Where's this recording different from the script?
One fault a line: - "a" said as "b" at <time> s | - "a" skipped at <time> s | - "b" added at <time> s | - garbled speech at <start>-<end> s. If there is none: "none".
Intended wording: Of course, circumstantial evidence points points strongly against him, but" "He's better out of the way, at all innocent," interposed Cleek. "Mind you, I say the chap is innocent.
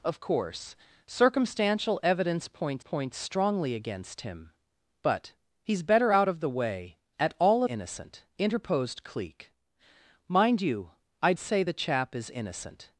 none